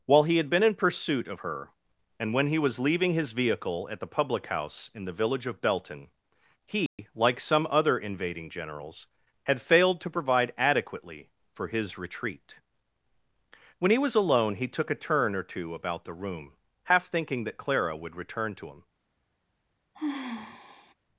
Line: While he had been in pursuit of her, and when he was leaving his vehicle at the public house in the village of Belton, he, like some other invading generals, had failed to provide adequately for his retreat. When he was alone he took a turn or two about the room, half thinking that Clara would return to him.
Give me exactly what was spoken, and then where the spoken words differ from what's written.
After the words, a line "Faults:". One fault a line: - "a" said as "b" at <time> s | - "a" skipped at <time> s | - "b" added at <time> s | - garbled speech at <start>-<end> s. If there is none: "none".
While he had been in pursuit of her, and when he was leaving his vehicle at the public house in the village of Belton, he, like some other invading generals, had failed to provide adequately for his retreat. When he was alone he took a turn or two about the room, half thinking that Clara would return to him.
Faults:
none